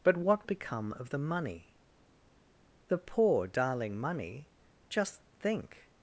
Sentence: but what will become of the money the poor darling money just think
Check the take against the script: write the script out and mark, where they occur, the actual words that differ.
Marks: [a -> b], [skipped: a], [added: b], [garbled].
but what [skipped: will] become of the money the poor darling money just think